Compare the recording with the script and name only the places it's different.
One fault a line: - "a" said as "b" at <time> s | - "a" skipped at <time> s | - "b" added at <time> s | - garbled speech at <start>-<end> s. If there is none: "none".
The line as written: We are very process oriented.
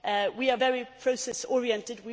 none